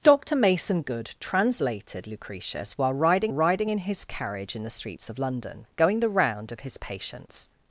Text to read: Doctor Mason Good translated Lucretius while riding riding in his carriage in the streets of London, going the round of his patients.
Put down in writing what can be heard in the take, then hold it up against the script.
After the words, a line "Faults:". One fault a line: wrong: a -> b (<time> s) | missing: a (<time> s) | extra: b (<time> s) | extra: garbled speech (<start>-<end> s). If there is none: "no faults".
Doctor Mason Good translated Lucretius while riding riding in his carriage in the streets of London, going the round of his patients.
Faults:
no faults